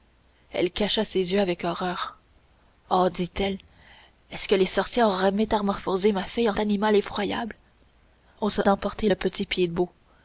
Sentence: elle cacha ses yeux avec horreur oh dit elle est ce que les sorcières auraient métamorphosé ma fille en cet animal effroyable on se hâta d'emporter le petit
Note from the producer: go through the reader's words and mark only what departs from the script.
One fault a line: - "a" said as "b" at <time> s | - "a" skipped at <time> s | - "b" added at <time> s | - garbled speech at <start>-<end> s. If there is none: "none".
- "cet" skipped at 6.5 s
- "hâta" skipped at 8.6 s